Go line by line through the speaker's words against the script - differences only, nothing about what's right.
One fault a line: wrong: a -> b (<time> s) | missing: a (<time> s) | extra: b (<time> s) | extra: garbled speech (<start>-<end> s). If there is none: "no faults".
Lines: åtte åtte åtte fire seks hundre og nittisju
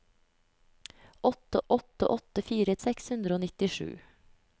no faults